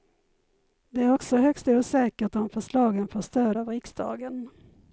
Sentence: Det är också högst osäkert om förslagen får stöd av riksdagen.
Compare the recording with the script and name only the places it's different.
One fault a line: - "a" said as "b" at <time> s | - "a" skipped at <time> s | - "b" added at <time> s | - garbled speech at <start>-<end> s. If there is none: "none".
none